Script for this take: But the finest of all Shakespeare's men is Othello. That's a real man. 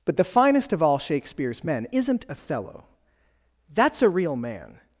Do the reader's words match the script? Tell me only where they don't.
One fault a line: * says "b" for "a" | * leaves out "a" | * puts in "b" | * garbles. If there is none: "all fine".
* says "isn't" for "is"